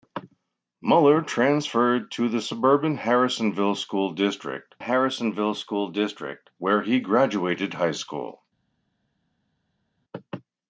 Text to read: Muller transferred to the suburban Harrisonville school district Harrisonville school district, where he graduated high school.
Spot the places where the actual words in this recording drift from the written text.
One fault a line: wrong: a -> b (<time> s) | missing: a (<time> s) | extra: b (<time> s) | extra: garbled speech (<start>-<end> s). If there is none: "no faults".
no faults